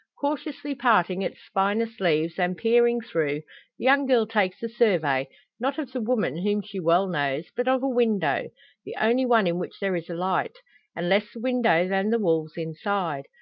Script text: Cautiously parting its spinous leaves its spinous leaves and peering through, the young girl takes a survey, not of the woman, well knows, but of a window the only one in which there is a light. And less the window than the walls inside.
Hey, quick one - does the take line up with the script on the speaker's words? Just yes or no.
no